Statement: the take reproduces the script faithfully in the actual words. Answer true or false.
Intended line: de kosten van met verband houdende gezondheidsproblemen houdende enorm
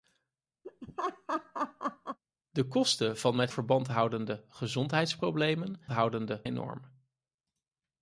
true